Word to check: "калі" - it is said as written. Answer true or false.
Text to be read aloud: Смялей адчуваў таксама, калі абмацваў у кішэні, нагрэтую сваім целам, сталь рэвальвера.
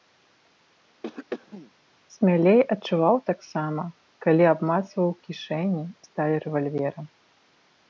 true